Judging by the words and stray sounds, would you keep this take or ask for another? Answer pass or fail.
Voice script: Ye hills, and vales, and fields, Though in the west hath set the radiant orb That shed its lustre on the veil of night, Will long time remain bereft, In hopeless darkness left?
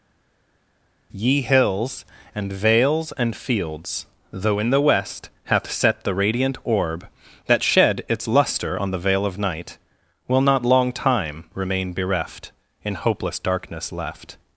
fail